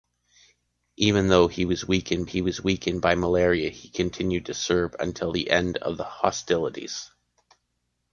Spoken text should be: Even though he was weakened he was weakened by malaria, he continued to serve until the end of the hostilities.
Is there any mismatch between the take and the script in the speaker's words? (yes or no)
no